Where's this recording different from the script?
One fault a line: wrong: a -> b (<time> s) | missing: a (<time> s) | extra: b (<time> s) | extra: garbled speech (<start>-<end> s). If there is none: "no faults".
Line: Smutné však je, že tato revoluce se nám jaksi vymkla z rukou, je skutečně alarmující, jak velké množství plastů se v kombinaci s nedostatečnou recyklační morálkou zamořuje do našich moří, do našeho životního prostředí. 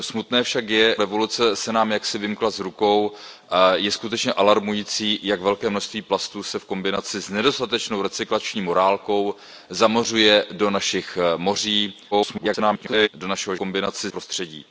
missing: že tato (1.0 s)
extra: garbled speech (12.1-13.1 s)
wrong: životního -> kombinaci (13.5 s)